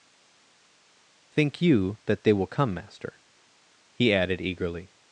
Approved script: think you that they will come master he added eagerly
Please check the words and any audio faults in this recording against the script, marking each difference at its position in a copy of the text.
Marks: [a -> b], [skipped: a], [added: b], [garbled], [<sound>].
think you that they will come master he added eagerly